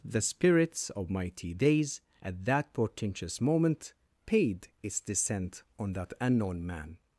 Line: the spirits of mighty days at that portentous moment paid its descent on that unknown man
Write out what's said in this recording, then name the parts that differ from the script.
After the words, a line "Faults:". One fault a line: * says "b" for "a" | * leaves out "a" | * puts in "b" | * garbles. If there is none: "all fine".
the spirits of mighty days at that portentous moment paid its descent on that unknown man
Faults:
all fine